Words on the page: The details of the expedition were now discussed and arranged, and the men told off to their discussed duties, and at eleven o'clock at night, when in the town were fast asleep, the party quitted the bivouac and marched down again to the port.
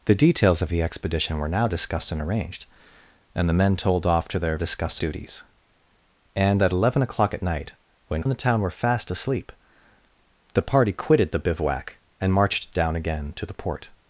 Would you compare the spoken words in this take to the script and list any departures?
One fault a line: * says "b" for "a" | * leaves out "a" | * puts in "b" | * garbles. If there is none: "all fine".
all fine